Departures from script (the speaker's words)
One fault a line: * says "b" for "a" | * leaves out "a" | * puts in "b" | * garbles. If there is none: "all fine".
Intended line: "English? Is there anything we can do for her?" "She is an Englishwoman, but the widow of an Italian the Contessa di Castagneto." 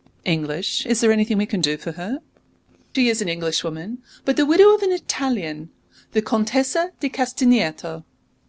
all fine